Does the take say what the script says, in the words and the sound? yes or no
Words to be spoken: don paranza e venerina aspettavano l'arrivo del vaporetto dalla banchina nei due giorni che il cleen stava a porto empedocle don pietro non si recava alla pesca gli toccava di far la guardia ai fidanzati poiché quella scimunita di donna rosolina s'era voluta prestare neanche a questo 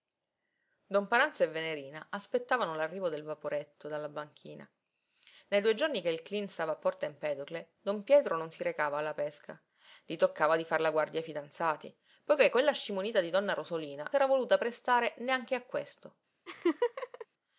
no